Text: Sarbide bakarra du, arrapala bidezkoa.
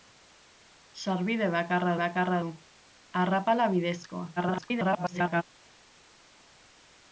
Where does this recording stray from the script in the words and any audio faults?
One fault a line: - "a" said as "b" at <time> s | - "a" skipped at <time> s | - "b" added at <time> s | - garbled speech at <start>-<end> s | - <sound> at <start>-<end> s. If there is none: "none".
- "bakarra" added at 2.0 s
- garbled speech at 4.4-5.4 s